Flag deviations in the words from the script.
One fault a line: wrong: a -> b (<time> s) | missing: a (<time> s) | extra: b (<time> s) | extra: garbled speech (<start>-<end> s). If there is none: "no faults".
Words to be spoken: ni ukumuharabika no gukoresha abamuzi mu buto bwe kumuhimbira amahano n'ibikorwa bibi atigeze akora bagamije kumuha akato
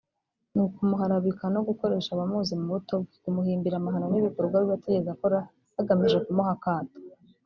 no faults